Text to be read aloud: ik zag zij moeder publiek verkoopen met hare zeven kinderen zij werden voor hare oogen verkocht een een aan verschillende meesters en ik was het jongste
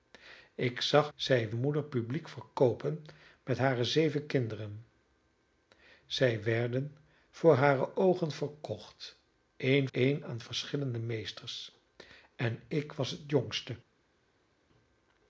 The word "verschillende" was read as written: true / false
true